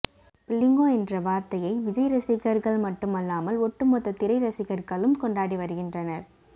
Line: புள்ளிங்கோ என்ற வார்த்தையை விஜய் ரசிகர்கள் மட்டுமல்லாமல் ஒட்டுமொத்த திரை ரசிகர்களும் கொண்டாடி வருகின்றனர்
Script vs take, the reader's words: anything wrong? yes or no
no